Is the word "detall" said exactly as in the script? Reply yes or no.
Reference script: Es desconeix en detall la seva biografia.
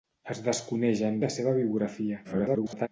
no